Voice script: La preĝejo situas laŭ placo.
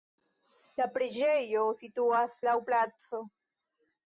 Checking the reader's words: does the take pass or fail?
pass